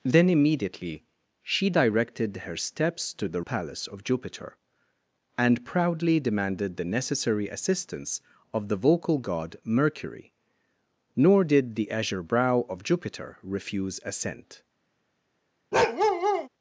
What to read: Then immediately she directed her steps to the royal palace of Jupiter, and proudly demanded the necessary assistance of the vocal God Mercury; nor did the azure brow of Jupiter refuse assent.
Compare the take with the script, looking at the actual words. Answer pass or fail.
fail